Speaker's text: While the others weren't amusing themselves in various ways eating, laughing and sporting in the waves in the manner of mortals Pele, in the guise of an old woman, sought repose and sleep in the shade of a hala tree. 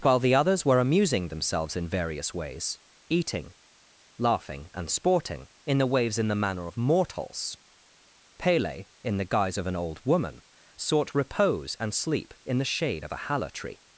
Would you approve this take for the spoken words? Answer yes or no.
no